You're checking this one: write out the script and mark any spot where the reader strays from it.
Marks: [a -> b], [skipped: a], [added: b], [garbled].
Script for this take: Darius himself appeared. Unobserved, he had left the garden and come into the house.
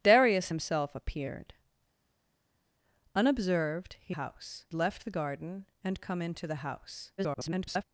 Darius himself appeared. Unobserved, he [had -> house] left the garden and come into the house. [garbled]